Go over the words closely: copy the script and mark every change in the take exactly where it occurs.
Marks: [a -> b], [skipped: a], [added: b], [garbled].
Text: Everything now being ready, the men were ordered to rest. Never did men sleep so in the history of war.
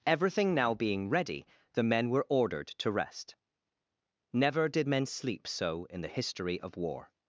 Everything now being ready, the men were ordered to rest. Never did men sleep so in the history of war.